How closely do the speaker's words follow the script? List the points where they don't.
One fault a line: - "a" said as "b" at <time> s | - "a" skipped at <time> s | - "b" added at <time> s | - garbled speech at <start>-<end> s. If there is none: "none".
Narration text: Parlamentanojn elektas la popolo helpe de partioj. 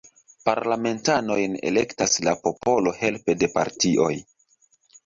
none